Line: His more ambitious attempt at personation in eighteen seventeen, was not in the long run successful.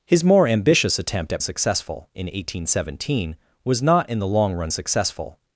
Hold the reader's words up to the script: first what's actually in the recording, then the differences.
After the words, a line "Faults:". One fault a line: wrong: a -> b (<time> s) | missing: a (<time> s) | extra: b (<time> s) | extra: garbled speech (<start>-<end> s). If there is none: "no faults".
His more ambitious attempt at successful in eighteen seventeen, was not in the long run successful.
Faults:
wrong: personation -> successful (1.4 s)